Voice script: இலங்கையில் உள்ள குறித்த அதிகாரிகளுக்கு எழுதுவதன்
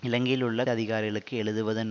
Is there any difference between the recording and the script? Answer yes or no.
yes